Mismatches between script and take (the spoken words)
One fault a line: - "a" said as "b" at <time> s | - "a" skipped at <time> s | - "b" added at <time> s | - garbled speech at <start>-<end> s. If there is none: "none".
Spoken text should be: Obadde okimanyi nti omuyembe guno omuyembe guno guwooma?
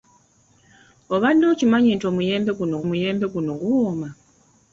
none